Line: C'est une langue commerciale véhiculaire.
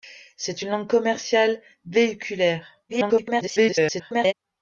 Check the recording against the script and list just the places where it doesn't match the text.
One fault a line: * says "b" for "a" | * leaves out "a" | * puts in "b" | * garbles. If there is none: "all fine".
* garbles